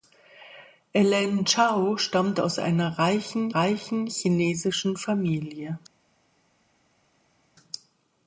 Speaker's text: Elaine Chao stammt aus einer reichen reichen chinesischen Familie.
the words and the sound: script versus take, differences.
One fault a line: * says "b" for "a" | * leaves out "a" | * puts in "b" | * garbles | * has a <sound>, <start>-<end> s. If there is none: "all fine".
all fine